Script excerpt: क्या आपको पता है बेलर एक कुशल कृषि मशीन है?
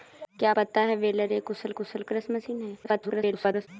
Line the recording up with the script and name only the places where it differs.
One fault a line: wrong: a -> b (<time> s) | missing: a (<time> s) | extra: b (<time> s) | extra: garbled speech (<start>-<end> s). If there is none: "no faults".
missing: आपको (0.5 s)
extra: कुशल (1.8 s)
extra: garbled speech (2.8-3.7 s)